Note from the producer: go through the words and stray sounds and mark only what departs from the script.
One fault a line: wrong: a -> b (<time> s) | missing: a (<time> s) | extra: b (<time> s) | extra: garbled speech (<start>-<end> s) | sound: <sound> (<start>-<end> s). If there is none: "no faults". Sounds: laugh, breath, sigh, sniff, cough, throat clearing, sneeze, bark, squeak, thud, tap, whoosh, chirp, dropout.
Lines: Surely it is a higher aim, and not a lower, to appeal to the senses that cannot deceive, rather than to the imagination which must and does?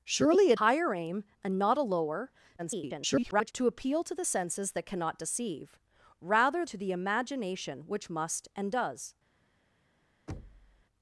missing: is a (0.6 s)
extra: garbled speech (2.6-3.5 s)
missing: than (6.7 s)
sound: thud (10.3-10.8 s)